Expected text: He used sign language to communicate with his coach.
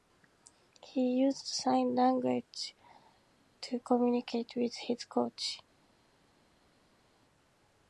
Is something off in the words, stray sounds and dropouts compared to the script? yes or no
no